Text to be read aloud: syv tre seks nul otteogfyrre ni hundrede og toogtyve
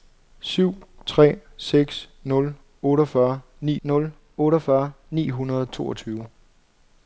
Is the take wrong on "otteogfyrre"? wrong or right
right